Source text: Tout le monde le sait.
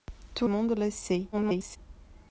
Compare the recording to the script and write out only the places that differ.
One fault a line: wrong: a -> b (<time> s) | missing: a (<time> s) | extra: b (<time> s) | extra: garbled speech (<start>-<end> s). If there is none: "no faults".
missing: le (0.5 s)
extra: garbled speech (1.3-1.8 s)